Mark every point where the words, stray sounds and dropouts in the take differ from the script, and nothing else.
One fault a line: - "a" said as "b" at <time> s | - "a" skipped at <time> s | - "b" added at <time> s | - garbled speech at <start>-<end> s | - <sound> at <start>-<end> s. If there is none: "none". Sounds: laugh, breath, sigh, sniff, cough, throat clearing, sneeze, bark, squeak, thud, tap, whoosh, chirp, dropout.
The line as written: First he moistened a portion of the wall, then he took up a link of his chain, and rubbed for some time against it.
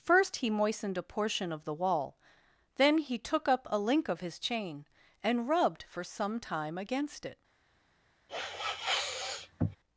- sniff at 8.3-9.8 s